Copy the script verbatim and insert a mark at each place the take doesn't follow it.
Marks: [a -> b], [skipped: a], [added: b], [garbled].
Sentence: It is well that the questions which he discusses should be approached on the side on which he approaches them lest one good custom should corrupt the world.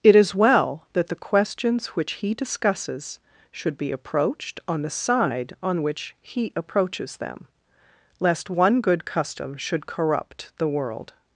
It is well that the questions which he discusses should be approached on the side on which he approaches them lest one good custom should corrupt the world.